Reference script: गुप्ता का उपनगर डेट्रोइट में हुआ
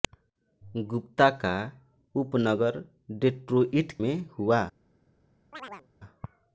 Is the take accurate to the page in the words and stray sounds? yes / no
no